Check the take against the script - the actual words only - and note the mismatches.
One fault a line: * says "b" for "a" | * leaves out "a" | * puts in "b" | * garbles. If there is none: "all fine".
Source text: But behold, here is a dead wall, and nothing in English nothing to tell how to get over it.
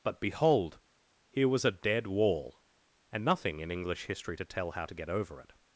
* says "was" for "is"
* says "history" for "nothing"